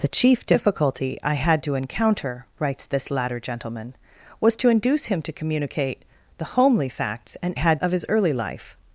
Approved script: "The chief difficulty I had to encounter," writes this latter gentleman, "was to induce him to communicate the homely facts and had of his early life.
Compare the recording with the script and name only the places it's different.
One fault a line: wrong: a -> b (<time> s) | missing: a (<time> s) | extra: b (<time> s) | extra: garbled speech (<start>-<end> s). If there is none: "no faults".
no faults